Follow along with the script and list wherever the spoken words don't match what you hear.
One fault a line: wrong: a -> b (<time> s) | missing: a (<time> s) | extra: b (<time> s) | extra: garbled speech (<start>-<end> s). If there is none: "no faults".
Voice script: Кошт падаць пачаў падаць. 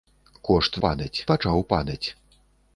no faults